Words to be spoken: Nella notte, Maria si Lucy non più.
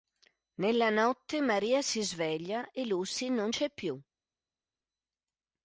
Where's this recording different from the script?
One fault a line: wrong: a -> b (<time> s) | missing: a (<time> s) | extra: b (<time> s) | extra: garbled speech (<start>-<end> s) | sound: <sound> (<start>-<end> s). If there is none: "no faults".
extra: sveglia e (2.0 s)
extra: c'è (3.5 s)